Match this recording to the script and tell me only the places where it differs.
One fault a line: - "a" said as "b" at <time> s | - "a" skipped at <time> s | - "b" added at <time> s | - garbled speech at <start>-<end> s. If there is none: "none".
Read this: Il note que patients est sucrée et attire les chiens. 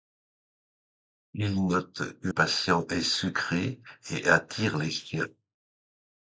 none